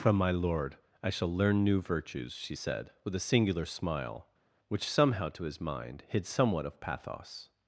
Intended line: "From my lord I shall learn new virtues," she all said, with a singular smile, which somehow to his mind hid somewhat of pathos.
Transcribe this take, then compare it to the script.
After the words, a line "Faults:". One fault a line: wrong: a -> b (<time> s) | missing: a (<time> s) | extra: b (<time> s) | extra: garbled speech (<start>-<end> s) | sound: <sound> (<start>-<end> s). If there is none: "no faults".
"From my lord I shall learn new virtues," she said, with a singular smile, which somehow to his mind hid somewhat of pathos.
Faults:
missing: all (2.5 s)